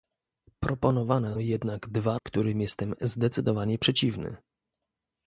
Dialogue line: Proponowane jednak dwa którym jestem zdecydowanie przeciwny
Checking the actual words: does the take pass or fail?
pass